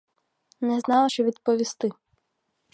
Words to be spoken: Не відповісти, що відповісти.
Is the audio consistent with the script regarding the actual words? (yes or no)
no